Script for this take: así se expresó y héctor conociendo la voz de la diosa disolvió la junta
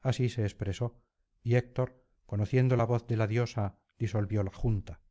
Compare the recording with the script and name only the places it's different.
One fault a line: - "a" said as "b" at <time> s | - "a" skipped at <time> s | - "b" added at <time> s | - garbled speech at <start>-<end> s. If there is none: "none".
none